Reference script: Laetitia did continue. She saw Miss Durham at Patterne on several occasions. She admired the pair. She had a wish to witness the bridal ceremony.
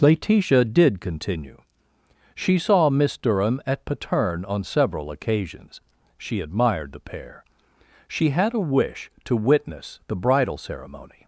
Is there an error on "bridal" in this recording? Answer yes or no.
no